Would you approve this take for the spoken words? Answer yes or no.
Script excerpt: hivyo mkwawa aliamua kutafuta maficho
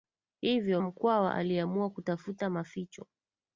yes